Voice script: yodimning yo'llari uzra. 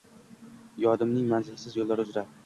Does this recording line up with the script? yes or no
no